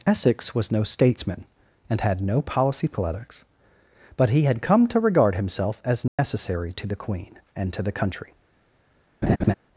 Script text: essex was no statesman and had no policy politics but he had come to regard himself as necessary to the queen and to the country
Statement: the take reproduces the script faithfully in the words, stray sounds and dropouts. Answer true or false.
false